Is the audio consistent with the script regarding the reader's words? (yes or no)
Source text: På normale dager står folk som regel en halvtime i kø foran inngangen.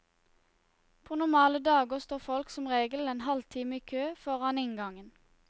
yes